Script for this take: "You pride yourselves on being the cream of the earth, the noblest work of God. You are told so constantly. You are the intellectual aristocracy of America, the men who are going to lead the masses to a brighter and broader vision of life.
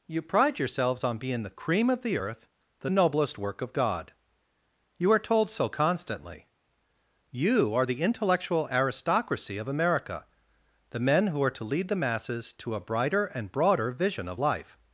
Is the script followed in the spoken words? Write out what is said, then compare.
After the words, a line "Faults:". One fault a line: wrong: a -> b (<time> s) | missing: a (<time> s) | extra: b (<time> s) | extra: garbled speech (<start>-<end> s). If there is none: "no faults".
"You pride yourselves on being the cream of the earth, the noblest work of God. You are told so constantly. You are the intellectual aristocracy of America, the men who are to lead the masses to a brighter and broader vision of life.
Faults:
missing: going (11.5 s)